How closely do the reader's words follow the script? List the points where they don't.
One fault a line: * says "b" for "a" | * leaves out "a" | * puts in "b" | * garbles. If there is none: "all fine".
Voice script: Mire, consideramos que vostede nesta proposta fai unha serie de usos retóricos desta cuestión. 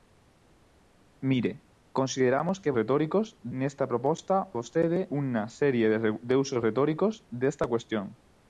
* says "retóricos" for "vostede"
* says "vostede" for "fai"